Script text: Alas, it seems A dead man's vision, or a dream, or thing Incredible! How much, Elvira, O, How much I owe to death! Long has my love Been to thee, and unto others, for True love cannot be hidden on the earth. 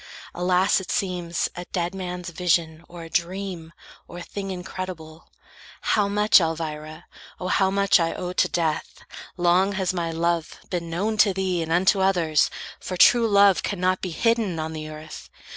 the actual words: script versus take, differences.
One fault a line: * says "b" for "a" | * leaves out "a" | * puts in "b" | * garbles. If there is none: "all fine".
* puts in "known"